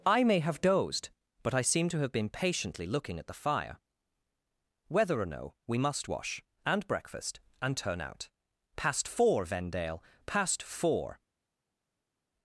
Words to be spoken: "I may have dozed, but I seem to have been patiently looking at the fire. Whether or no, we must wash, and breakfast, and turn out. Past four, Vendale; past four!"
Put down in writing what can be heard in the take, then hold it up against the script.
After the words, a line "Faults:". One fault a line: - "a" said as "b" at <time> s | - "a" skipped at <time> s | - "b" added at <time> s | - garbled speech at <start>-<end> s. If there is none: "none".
"I may have dozed, but I seem to have been patiently looking at the fire. Whether or no, we must wash, and breakfast, and turn out. Past four, Vendale; past four!"
Faults:
none